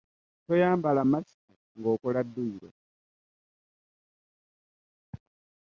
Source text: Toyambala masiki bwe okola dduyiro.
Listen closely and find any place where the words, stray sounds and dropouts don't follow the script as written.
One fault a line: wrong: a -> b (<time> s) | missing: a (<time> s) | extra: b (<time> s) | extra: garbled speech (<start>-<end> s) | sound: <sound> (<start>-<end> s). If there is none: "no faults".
wrong: bwe -> nga (1.8 s)